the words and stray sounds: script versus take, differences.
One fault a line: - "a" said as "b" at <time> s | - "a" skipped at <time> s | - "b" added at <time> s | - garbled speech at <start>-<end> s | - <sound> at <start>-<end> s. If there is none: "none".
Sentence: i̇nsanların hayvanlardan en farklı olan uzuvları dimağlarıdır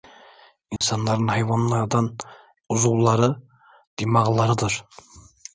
- dropout at 0.8-0.8 s
- "en farklı olan" skipped at 2.2 s